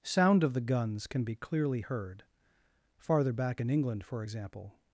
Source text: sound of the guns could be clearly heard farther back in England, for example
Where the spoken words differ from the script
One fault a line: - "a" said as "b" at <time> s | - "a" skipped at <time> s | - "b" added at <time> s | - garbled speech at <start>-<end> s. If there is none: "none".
- "could" said as "can" at 1.1 s